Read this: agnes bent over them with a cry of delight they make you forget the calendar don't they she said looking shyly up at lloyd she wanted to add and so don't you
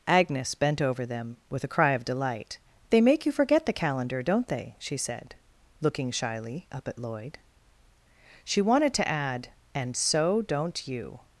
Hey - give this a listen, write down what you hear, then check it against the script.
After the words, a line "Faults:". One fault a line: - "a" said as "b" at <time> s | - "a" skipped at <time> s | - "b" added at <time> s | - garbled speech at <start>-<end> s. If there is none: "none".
agnes bent over them with a cry of delight they make you forget the calendar don't they she said looking shyly up at lloyd she wanted to add and so don't you
Faults:
none